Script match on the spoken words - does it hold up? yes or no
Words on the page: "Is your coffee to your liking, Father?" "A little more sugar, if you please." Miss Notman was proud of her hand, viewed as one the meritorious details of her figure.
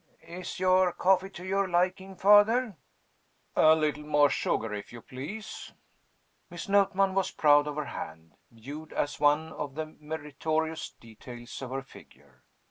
no